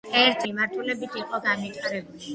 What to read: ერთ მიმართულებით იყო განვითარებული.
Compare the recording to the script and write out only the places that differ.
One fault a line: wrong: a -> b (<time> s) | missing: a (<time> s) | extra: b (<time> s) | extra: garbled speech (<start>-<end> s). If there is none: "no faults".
no faults